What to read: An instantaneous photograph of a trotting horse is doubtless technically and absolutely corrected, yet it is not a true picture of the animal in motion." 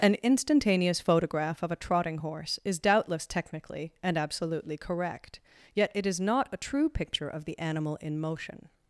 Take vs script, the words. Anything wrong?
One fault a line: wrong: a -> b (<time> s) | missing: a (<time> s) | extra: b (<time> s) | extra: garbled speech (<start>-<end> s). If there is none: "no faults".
wrong: corrected -> correct (4.8 s)